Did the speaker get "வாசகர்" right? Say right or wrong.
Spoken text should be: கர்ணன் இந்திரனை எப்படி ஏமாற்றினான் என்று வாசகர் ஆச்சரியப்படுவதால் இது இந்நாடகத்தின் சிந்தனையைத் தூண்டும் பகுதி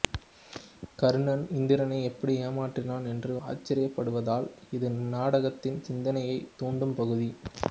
wrong